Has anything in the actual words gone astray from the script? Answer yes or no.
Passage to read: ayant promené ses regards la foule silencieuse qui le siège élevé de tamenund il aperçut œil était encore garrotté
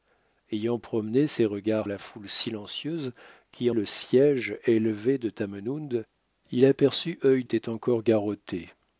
no